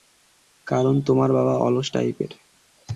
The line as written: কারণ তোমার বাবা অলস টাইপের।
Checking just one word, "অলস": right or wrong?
right